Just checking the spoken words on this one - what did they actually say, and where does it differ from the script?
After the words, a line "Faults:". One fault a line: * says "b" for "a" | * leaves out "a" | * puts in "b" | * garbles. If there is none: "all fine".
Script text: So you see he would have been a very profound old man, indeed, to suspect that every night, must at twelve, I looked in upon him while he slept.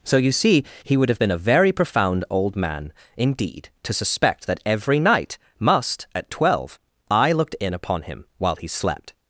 So you see he would have been a very profound old man, indeed, to suspect that every night, must at twelve, I looked in upon him while he slept.
Faults:
all fine